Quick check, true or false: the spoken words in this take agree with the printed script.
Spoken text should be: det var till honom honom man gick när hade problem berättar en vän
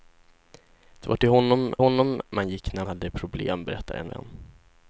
true